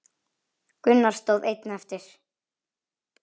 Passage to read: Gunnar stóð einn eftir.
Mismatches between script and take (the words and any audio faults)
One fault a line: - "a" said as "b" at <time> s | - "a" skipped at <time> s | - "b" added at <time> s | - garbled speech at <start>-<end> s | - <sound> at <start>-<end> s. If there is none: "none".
none